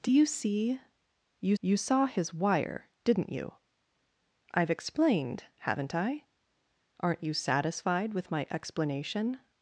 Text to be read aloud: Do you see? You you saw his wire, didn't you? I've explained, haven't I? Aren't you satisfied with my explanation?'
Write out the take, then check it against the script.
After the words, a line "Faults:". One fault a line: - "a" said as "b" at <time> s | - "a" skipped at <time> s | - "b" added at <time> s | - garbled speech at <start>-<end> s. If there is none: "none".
Do you see? You you saw his wire, didn't you? I've explained, haven't I? Aren't you satisfied with my explanation?'
Faults:
none